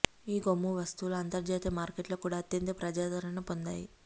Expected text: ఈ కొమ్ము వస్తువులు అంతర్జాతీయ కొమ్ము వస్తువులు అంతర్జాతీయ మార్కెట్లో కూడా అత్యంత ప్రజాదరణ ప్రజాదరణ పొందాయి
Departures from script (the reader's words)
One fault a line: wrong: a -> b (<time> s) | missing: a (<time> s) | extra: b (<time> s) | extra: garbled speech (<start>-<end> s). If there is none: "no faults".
missing: కొమ్ము వస్తువులు అంతర్జాతీయ (1.7 s)
missing: ప్రజాదరణ (3.4 s)